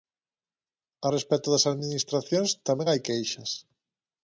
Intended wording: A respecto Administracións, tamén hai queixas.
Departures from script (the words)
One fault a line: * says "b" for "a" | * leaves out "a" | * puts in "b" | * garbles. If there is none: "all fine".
* puts in "das"